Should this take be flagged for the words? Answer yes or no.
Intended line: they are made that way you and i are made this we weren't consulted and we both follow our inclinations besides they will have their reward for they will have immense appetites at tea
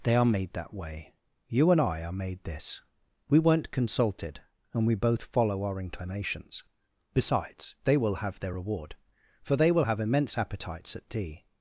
no